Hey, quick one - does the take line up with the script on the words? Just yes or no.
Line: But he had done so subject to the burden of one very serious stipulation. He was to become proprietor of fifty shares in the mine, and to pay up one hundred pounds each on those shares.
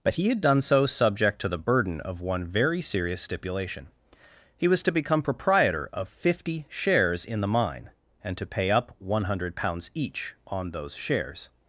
yes